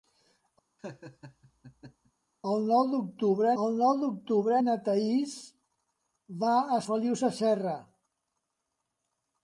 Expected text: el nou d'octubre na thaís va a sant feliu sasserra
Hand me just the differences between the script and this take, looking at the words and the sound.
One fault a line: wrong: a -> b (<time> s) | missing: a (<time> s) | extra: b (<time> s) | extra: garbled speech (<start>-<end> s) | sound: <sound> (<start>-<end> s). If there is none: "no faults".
sound: laugh (0.8-2.1 s)
extra: el nou d'octubre (3.6 s)
missing: sant (6.8 s)